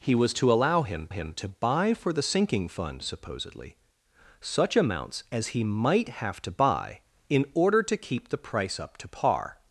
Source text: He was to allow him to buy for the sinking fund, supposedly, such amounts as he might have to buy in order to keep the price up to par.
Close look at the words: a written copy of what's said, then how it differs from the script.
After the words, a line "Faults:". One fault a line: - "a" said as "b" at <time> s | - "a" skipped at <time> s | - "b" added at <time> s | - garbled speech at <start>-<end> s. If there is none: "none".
He was to allow him him to buy for the sinking fund, supposedly, such amounts as he might have to buy in order to keep the price up to par.
Faults:
- "him" added at 1.1 s